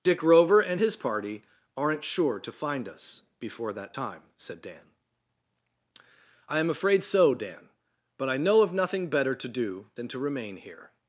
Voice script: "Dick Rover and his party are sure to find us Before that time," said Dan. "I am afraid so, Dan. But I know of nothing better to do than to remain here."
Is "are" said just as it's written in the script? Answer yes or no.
no